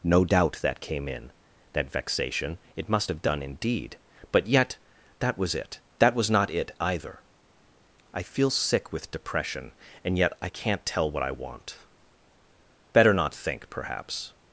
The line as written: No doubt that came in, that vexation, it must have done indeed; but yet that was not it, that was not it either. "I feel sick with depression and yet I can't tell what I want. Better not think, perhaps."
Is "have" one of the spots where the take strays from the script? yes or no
no